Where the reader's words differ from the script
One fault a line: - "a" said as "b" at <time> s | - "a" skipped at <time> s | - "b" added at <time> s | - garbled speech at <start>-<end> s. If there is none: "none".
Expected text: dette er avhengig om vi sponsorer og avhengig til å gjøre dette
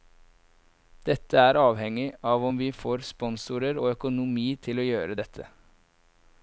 - "av" added at 2.3 s
- "får" added at 2.8 s
- "avhengig" said as "økonomi" at 3.9 s